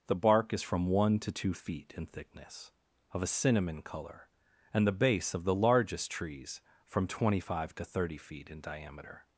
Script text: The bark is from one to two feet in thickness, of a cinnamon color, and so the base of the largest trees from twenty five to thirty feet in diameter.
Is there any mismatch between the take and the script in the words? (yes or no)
yes